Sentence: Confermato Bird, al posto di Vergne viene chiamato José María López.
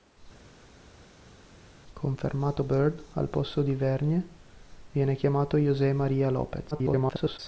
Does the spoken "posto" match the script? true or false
true